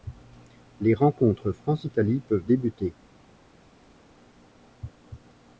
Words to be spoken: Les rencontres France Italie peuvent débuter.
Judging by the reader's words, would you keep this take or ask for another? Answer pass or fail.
pass